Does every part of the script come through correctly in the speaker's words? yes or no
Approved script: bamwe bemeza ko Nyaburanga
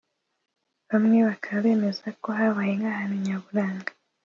no